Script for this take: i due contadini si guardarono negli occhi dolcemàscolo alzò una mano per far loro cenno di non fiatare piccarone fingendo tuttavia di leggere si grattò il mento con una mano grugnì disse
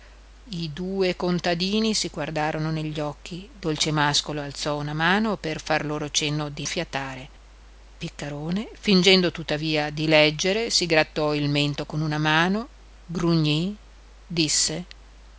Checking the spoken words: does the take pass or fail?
fail